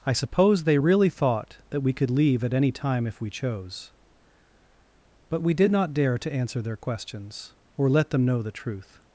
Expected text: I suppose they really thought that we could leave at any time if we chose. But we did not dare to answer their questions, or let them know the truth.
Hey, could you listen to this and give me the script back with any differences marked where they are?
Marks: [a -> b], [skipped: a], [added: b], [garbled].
I suppose they really thought that we could leave at any time if we chose. But we did not dare to answer their questions, or let them know the truth.